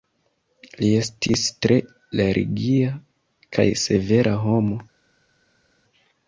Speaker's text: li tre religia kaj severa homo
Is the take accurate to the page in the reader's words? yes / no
no